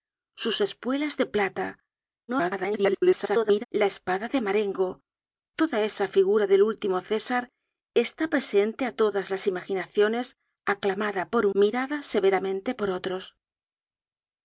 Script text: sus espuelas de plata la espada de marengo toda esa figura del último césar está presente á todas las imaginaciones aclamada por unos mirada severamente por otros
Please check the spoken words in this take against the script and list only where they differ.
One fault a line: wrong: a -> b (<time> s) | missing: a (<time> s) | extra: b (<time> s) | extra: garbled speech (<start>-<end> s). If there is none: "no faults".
extra: garbled speech (2.3-3.6 s)
missing: unos (11.4 s)